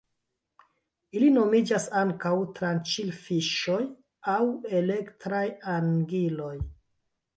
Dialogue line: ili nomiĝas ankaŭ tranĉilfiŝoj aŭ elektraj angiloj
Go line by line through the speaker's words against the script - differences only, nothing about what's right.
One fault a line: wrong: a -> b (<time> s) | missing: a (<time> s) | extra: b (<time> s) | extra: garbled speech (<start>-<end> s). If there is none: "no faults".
no faults